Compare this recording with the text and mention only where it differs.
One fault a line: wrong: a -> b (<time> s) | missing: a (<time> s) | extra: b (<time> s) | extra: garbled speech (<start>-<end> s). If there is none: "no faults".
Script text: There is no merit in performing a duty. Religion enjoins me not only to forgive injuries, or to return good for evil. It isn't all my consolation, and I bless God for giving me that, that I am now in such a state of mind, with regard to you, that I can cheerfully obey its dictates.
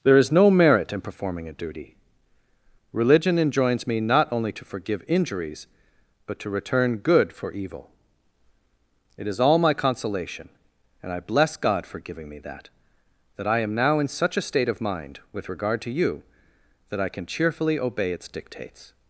wrong: or -> but (6.2 s)
wrong: isn't -> is (9.3 s)